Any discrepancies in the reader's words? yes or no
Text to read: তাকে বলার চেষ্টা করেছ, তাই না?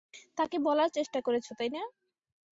no